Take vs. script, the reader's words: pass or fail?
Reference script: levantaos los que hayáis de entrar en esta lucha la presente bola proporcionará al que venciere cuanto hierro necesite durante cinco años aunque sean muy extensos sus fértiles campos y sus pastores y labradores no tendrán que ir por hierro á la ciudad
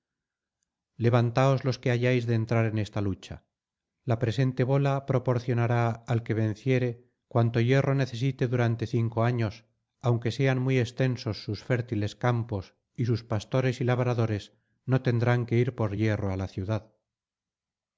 pass